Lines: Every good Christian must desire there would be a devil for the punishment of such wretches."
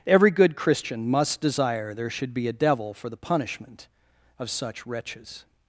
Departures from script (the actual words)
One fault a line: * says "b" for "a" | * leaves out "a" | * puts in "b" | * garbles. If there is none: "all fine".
* says "should" for "would"